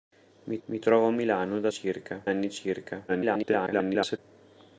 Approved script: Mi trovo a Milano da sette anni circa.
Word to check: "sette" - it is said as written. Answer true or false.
false